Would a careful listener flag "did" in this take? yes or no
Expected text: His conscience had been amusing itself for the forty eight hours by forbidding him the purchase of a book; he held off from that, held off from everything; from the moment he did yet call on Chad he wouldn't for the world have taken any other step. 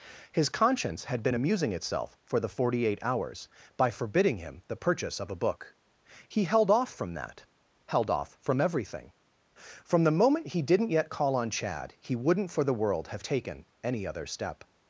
yes